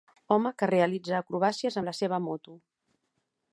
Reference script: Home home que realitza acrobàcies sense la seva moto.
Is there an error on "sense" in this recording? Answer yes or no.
yes